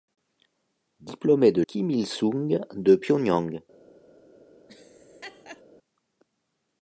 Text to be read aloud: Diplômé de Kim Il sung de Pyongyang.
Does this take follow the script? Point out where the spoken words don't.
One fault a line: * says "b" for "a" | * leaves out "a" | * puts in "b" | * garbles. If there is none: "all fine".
all fine